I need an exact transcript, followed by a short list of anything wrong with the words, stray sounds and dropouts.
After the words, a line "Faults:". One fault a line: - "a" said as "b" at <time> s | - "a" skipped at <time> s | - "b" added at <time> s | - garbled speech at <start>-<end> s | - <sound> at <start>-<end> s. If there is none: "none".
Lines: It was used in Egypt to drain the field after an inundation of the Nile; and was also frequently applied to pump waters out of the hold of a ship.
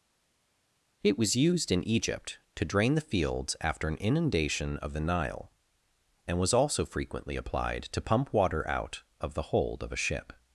It was used in Egypt to drain the fields after an inundation of the Nile; and was also frequently applied to pump water out of the hold of a ship.
Faults:
- "field" said as "fields" at 3.0 s
- "waters" said as "water" at 8.3 s